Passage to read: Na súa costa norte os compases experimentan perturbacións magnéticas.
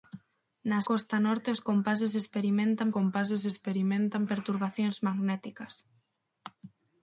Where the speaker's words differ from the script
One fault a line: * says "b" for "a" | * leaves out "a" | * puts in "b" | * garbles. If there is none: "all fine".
* leaves out "súa"
* puts in "compases experimentan"